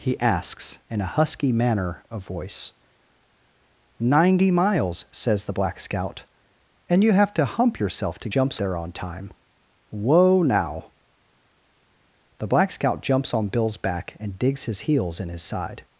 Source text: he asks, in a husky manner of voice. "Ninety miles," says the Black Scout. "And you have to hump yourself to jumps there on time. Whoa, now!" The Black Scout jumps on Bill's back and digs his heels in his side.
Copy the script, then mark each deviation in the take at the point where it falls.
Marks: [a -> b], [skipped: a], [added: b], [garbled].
he asks, in a husky manner of voice. "Ninety miles," says the Black Scout. "And you have to hump yourself to jumps there on time. Whoa, now!" The Black Scout jumps on Bill's back and digs his heels in his side.